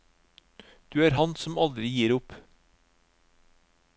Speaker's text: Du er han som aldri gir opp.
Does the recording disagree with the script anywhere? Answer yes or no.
no